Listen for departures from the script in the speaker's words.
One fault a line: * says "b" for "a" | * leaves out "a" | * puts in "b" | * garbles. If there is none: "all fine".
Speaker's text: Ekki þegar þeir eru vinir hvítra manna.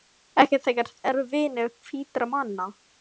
* leaves out "þeir"